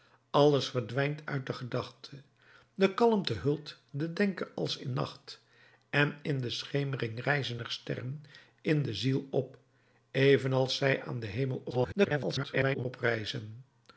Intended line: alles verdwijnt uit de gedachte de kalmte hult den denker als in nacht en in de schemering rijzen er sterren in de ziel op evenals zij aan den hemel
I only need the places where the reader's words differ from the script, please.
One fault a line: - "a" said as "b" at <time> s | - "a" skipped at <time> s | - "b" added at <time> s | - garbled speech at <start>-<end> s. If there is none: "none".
- garbled speech at 11.7-12.9 s